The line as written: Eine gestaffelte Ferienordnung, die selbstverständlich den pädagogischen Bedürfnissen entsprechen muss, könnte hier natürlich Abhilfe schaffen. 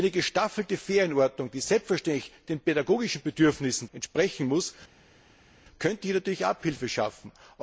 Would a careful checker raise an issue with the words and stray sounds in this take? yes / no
no